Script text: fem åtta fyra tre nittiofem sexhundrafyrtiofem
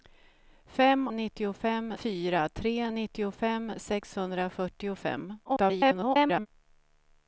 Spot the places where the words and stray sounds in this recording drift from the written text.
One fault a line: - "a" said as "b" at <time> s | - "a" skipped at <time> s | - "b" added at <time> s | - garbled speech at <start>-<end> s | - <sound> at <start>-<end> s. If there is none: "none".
- "åtta" said as "nittiofem" at 1.1 s
- garbled speech at 5.4-6.5 s